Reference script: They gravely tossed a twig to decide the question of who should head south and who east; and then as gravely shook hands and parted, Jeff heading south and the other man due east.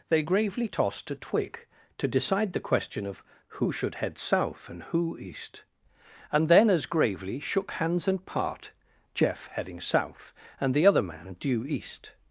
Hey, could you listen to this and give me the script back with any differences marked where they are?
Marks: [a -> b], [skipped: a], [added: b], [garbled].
They gravely tossed a twig to decide the question of who should head south and who east; and then as gravely shook hands and [parted, -> part] Jeff heading south and the other man due east.